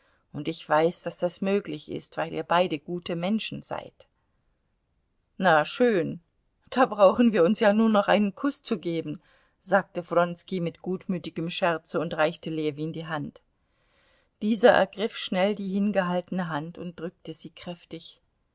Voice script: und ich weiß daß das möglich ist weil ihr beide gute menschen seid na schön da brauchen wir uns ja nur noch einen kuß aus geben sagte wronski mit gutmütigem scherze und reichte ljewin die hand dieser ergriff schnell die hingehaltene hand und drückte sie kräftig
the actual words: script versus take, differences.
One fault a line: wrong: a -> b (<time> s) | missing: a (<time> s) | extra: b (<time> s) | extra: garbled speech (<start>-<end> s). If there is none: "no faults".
wrong: aus -> zu (8.6 s)